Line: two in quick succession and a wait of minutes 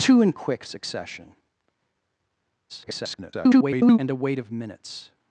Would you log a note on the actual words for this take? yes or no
yes